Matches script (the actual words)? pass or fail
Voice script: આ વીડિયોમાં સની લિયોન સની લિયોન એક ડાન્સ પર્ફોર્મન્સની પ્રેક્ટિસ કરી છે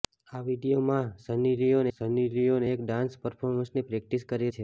pass